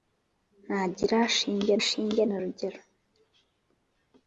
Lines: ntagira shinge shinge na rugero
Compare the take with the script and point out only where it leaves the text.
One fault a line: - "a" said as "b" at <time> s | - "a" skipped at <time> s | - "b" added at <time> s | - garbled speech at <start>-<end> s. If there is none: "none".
none